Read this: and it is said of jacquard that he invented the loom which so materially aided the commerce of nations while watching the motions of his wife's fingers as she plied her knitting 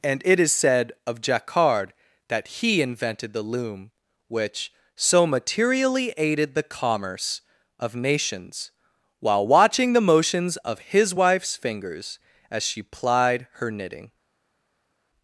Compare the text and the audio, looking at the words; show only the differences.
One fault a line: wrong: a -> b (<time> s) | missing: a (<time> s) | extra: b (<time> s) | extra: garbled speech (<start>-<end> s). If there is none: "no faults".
no faults